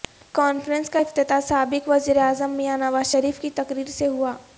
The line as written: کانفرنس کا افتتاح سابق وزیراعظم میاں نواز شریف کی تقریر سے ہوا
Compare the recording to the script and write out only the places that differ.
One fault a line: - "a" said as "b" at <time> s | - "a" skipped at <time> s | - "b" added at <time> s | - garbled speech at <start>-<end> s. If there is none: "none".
none